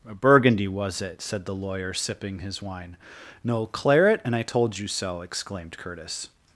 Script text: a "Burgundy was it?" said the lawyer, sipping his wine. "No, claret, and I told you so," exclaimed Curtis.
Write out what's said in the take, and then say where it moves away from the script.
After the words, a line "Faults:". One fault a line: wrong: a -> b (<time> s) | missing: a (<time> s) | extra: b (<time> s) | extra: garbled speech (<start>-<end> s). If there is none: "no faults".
a "Burgundy was it?" said the lawyer, sipping his wine. "No, claret, and I told you so," exclaimed Curtis.
Faults:
no faults